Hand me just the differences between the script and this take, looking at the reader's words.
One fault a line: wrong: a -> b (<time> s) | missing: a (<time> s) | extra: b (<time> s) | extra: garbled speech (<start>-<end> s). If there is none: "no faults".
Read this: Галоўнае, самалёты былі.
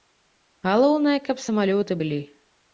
extra: каб (1.3 s)